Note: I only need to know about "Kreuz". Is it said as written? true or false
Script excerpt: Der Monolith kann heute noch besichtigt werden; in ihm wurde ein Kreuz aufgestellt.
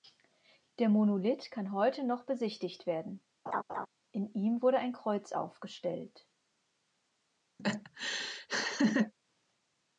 true